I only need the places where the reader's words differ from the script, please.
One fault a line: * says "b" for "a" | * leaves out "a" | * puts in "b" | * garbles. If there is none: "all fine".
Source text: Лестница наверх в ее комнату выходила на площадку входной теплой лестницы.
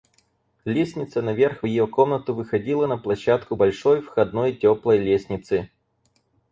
* puts in "большой"